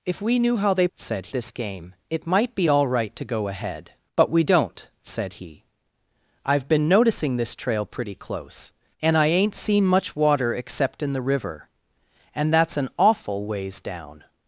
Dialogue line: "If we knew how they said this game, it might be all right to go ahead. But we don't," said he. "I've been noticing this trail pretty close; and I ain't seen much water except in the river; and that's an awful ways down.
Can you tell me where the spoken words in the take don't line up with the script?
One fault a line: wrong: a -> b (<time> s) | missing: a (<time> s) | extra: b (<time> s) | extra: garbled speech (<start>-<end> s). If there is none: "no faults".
no faults